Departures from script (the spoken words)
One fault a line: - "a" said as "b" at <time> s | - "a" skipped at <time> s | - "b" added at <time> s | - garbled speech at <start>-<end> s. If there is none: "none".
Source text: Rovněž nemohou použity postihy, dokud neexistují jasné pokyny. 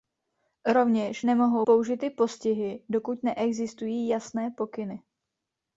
none